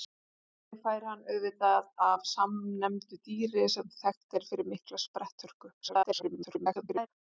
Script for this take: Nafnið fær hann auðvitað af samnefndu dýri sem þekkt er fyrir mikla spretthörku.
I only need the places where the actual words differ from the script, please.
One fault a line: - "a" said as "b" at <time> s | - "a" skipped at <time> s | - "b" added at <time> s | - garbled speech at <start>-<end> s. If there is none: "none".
- garbled speech at 5.8-7.1 s